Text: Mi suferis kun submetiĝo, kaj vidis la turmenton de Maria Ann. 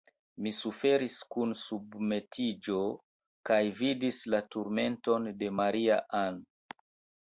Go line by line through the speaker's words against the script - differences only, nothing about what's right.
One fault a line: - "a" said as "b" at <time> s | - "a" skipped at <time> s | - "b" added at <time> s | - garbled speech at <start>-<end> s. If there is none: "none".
none